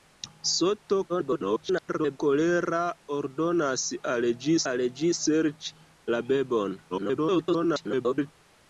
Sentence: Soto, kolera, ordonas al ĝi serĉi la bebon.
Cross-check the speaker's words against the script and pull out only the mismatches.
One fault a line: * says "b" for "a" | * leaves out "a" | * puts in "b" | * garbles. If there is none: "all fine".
* garbles
* puts in "al ĝi"
* garbles